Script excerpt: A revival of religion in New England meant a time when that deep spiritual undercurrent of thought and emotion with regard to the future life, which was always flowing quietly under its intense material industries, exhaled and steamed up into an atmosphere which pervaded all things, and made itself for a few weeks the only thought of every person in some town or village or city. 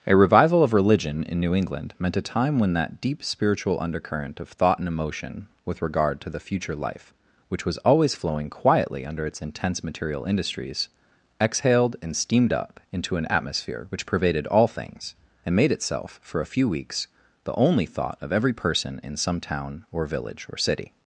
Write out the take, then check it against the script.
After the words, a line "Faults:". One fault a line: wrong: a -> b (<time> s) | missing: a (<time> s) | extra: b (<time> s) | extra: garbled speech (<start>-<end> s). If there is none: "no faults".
A revival of religion in New England meant a time when that deep spiritual undercurrent of thought and emotion with regard to the future life, which was always flowing quietly under its intense material industries, exhaled and steamed up into an atmosphere which pervaded all things, and made itself for a few weeks the only thought of every person in some town or village or city.
Faults:
no faults